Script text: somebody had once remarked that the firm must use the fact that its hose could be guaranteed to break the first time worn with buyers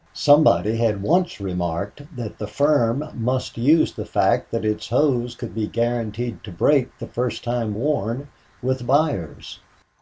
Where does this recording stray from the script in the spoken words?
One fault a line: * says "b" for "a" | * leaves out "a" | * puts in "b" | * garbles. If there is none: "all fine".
all fine